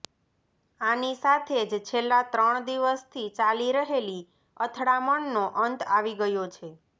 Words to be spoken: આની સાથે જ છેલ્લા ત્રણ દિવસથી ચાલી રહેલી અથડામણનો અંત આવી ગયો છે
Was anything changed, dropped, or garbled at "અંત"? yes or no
no